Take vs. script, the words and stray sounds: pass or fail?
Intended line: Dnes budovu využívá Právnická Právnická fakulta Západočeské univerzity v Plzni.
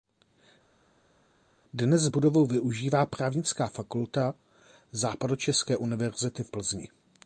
fail